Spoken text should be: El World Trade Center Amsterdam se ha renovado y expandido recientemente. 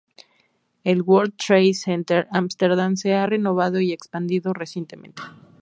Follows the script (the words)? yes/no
yes